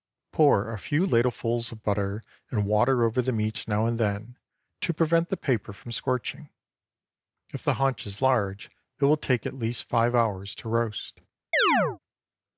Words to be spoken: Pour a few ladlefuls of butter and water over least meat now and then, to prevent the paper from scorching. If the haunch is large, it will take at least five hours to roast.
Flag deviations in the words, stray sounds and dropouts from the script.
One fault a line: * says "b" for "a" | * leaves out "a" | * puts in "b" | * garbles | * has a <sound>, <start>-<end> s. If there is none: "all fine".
* says "the" for "least"
* has a chirp, 11.5-12.0 s